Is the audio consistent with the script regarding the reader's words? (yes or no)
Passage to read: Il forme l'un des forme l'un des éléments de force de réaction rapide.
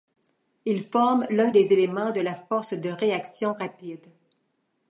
no